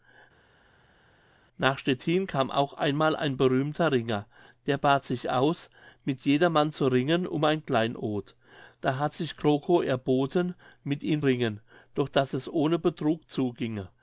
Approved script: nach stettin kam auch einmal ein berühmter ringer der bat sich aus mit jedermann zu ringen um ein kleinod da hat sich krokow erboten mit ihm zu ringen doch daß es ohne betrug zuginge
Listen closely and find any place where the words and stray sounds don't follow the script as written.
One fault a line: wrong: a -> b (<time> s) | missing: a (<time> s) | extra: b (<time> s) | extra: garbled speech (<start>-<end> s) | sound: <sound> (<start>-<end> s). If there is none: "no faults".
missing: zu (11.2 s)